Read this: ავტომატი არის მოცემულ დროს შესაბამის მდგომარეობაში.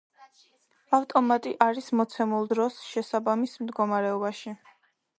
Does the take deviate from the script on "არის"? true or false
false